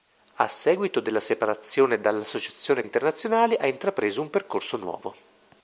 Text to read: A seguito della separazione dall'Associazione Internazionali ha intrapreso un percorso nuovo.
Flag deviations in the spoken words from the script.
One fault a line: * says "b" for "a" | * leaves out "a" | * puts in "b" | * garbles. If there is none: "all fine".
all fine